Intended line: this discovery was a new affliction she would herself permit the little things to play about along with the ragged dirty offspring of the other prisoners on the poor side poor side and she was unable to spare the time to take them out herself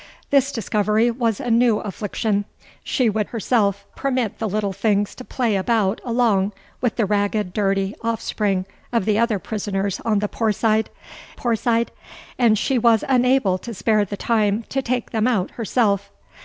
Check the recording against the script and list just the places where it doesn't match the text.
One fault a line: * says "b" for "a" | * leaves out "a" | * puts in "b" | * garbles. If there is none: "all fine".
all fine